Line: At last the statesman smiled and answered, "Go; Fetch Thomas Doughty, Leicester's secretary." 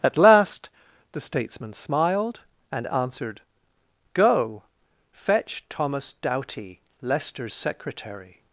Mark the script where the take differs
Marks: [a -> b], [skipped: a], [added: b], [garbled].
At last the statesman smiled and answered, "Go; Fetch Thomas Doughty, Leicester's secretary."